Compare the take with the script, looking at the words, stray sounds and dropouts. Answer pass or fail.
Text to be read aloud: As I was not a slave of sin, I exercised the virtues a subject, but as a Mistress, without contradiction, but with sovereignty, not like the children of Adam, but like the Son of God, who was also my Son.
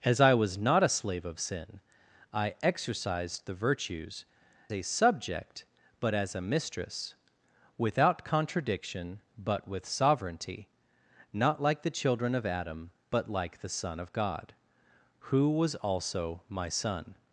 pass